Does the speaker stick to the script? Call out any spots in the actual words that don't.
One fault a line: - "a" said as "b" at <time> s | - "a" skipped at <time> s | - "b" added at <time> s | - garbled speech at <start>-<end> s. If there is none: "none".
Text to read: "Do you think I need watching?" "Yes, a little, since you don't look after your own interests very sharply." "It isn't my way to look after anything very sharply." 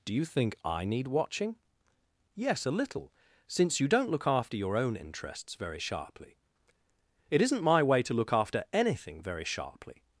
none